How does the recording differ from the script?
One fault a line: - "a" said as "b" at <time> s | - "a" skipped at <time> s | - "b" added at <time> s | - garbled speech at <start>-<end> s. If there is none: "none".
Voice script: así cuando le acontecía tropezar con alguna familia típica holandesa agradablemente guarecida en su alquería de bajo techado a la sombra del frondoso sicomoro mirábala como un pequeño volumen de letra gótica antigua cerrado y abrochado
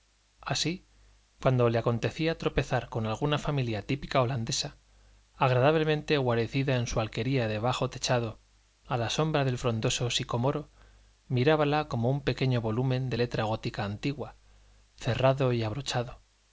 none